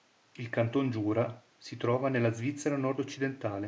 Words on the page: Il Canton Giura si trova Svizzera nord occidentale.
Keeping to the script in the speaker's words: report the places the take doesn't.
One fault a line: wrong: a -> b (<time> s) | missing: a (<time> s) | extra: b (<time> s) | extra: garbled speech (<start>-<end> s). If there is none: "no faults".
extra: nella (2.1 s)